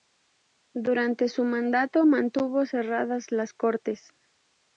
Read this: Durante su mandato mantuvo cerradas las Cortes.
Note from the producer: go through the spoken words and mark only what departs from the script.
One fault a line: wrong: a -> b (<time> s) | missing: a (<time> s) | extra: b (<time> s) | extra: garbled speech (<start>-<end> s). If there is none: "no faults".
no faults